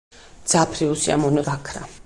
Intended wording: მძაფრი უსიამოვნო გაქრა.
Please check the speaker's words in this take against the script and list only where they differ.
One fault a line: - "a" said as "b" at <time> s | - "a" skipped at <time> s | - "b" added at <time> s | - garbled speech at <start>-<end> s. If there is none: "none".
none